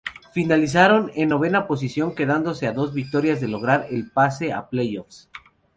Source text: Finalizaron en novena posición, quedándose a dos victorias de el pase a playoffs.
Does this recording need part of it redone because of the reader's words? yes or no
yes